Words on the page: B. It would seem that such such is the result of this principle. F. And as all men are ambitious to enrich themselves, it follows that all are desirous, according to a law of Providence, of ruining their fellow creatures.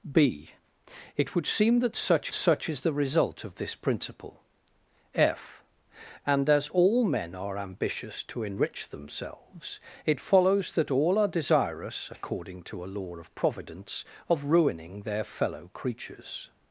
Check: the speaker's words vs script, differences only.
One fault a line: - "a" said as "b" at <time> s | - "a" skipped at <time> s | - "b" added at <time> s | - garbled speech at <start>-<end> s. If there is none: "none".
none